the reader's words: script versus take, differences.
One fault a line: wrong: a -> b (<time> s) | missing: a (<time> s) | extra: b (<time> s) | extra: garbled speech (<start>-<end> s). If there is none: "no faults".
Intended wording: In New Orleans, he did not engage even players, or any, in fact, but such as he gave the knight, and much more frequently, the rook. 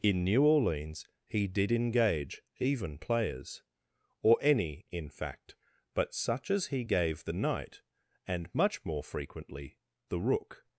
missing: not (1.7 s)